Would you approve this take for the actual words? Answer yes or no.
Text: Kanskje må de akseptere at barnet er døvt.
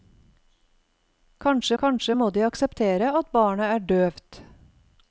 no